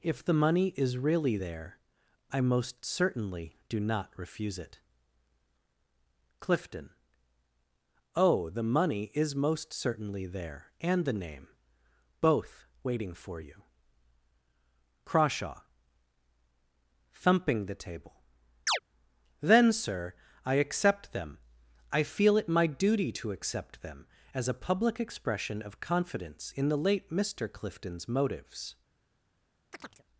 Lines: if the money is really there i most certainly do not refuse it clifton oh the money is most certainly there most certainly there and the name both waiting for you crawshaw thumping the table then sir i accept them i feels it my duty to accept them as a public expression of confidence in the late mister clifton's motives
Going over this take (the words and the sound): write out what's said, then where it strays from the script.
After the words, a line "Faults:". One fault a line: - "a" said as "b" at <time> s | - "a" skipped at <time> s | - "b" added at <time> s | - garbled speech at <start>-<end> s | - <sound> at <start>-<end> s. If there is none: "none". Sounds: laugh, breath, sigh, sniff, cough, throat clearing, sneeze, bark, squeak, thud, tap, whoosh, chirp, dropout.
if the money is really there i most certainly do not refuse it clifton oh the money is most certainly there and the name both waiting for you crawshaw thumping the table then sir i accept them i feel it my duty to accept them as a public expression of confidence in the late mister clifton's motives
Faults:
- "most certainly there" skipped at 10.7 s
- chirp at 18.7-18.8 s
- "feels" said as "feel" at 22.0 s
- chirp at 29.7-30.0 s